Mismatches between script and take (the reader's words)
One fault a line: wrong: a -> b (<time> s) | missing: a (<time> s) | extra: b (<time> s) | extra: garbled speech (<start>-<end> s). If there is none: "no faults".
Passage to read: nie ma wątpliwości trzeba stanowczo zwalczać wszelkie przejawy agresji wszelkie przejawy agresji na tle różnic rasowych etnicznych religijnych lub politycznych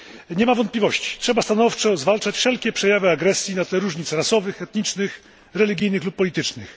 missing: wszelkie przejawy agresji (3.6 s)